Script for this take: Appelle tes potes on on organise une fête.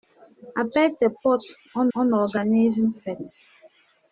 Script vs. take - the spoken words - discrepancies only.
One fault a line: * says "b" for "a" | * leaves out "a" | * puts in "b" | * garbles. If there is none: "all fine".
all fine